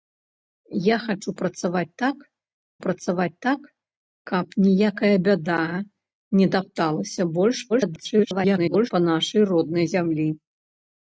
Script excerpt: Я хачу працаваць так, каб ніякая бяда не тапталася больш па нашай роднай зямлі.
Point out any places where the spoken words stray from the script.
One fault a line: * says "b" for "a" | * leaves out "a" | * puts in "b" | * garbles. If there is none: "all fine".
* puts in "працаваць так"
* garbles